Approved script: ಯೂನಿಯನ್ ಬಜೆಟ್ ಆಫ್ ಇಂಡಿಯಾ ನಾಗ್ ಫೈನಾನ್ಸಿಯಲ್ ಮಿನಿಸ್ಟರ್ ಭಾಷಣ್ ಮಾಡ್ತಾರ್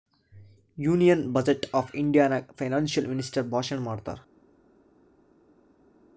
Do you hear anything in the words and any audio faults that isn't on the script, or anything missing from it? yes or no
no